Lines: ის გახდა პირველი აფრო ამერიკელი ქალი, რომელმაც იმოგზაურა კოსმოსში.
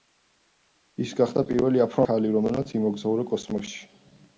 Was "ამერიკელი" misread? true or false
true